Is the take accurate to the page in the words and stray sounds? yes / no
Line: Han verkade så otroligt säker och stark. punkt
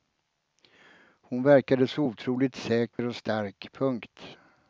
no